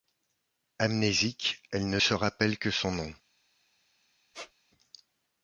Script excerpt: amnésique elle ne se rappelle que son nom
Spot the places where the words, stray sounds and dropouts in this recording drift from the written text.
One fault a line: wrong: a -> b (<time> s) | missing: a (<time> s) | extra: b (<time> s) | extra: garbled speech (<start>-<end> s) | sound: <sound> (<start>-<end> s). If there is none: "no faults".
sound: squeak (4.3-4.5 s)